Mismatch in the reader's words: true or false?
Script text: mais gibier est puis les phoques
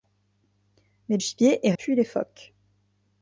false